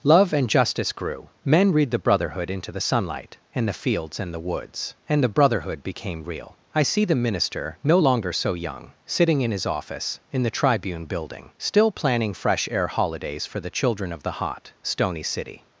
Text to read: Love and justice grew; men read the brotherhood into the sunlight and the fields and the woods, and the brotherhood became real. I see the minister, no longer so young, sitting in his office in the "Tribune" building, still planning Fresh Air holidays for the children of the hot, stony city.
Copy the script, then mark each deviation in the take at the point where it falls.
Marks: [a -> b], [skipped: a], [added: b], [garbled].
Love and justice grew; men read the brotherhood into the sunlight and the fields and the woods, and the brotherhood became real. I see the minister, no longer so young, sitting in his office in the "Tribune" building, still planning Fresh Air holidays for the children of the hot, stony city.